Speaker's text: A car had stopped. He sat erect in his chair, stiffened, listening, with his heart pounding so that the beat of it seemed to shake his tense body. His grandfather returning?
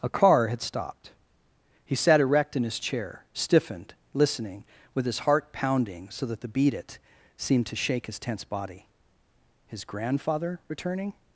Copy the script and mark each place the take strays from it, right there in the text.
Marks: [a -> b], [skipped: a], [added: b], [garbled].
A car had stopped. He sat erect in his chair, stiffened, listening, with his heart pounding so that the beat [skipped: of] it seemed to shake his tense body. His grandfather returning?